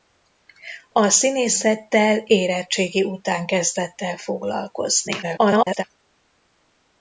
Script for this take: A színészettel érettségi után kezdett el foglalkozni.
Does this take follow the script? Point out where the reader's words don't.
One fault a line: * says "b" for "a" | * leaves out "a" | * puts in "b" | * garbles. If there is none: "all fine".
* garbles